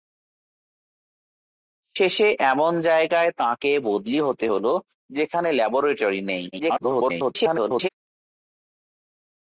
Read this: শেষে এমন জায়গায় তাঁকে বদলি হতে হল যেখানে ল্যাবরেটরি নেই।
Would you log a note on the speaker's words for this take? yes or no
yes